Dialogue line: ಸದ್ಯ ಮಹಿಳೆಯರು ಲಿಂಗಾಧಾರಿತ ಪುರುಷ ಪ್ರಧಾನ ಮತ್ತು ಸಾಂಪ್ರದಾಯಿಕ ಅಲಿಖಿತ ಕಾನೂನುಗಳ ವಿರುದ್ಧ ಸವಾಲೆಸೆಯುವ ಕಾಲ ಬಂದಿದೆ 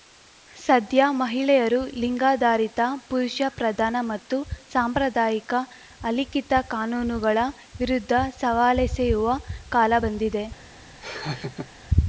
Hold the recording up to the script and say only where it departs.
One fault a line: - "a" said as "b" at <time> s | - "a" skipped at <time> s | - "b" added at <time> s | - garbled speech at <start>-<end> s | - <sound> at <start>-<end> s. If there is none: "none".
- laugh at 11.0-11.7 s